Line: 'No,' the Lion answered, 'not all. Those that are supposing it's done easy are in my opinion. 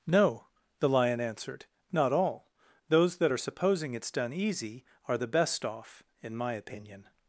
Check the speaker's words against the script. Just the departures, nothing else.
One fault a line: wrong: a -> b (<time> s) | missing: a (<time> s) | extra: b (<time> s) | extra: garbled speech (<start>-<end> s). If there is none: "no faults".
extra: the best off (5.1 s)